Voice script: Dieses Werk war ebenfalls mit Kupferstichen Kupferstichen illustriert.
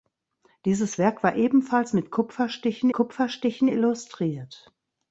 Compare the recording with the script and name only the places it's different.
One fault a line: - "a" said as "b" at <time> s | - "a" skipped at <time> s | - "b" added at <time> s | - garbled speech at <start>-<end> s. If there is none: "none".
none